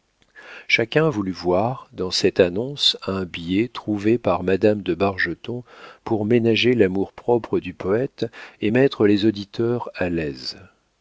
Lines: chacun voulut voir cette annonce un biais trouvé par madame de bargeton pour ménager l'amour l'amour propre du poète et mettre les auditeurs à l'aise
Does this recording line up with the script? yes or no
no